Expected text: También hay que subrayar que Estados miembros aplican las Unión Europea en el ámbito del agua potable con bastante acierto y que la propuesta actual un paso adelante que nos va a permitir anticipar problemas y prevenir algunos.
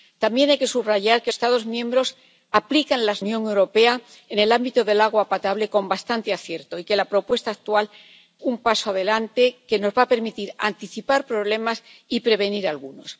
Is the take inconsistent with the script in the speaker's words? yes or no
no